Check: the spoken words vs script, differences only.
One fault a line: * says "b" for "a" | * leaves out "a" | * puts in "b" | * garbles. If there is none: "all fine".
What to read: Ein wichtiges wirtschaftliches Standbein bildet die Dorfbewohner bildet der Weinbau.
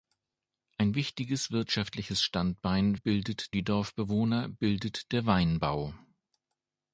all fine